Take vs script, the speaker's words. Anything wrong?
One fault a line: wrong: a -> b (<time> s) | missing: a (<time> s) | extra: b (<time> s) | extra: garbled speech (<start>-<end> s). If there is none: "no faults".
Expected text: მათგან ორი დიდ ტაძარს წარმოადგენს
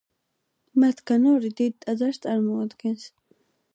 no faults